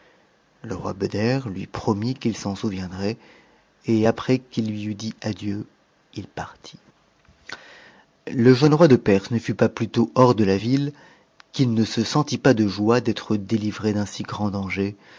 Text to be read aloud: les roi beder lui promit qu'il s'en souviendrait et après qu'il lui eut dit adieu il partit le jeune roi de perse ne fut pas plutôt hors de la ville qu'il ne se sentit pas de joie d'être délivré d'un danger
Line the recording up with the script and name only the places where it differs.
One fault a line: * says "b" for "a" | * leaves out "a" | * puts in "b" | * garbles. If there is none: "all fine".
* says "le" for "les"
* puts in "si grand"